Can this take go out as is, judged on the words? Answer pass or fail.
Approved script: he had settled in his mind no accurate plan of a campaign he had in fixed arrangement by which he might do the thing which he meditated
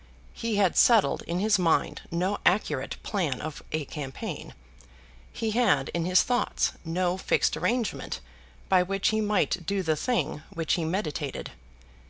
fail